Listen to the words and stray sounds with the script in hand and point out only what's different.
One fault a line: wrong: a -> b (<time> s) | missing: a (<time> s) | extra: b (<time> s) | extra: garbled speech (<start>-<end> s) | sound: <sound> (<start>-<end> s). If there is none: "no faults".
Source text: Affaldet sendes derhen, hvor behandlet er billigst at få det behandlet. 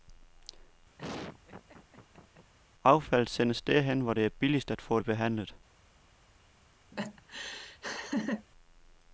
sound: laugh (1.0-2.5 s)
wrong: behandlet -> det (4.1 s)
sound: laugh (6.9-8.5 s)